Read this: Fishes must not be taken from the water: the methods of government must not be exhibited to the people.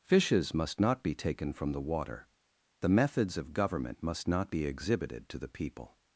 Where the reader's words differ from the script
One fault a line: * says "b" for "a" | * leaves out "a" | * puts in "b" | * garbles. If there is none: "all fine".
all fine